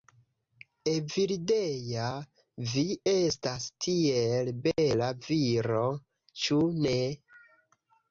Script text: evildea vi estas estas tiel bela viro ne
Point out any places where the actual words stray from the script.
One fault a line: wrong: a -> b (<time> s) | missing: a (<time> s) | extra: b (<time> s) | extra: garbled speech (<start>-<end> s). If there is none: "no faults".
missing: estas (3.6 s)
extra: ĉu (6.4 s)